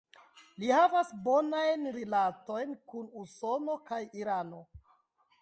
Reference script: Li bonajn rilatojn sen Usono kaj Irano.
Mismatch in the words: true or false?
true